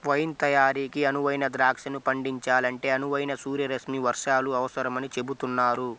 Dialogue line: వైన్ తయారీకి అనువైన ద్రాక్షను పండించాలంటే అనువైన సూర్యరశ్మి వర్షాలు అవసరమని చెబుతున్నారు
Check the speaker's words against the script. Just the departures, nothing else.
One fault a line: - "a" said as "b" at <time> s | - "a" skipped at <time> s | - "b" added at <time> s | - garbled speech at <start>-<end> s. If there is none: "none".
none